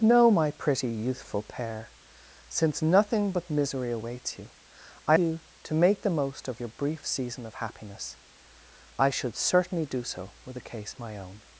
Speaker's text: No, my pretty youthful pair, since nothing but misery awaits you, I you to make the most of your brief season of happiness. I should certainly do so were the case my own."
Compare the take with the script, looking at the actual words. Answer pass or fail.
pass